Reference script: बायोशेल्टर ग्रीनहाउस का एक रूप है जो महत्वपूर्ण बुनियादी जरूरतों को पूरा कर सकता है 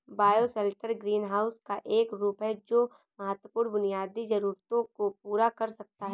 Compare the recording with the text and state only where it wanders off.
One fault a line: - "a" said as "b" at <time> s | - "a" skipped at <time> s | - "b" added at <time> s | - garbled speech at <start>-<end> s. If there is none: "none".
none